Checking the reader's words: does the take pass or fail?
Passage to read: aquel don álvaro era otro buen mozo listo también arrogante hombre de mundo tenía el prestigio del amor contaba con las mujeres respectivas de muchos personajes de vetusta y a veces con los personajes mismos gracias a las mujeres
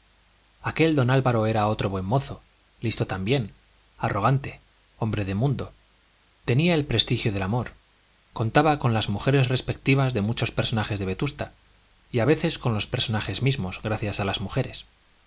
pass